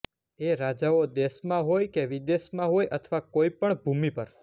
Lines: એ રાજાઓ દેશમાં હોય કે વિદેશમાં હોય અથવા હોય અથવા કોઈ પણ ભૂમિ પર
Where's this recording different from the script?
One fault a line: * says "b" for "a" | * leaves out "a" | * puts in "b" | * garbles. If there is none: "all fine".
* leaves out "હોય અથવા"